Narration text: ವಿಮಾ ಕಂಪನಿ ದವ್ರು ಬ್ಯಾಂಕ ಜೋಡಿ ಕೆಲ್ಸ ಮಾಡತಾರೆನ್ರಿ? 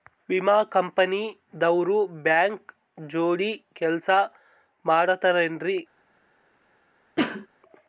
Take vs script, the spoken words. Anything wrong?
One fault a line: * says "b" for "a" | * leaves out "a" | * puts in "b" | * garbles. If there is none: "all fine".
all fine